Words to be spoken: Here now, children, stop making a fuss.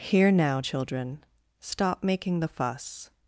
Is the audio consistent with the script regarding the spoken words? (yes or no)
no